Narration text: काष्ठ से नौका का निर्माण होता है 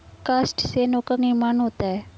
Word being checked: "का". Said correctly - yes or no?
no